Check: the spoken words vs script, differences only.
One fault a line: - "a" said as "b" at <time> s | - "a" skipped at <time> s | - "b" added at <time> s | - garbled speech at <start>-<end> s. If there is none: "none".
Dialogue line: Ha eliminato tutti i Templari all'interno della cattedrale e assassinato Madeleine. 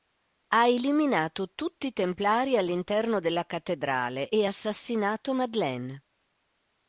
none